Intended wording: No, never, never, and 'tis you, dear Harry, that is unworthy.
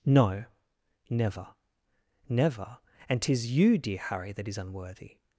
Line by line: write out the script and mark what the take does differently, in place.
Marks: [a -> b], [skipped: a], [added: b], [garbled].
No, never, never, and 'tis you, dear Harry, that is unworthy.